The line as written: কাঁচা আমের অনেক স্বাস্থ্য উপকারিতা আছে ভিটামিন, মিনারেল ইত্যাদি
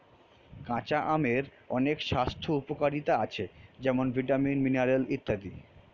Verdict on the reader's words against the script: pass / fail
fail